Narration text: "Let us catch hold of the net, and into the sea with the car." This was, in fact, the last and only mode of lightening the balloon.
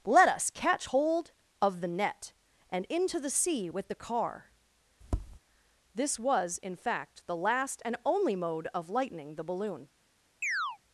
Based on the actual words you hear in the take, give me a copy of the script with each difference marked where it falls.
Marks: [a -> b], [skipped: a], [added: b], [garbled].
"Let us catch hold of the net, and into the sea with the car." This was, in fact, the last and only mode of lightening the balloon.